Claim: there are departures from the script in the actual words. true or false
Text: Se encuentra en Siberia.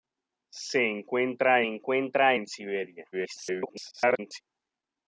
true